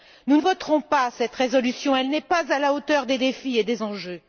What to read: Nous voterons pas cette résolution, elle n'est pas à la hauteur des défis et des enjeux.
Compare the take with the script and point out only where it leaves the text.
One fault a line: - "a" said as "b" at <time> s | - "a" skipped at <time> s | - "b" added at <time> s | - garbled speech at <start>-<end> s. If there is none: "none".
none